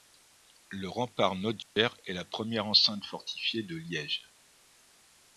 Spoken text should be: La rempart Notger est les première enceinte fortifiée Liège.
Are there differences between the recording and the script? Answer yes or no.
yes